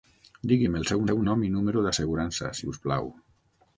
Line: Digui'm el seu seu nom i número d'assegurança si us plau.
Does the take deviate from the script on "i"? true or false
false